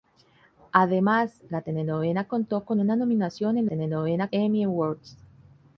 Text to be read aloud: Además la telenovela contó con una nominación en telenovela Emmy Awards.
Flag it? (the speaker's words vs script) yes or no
no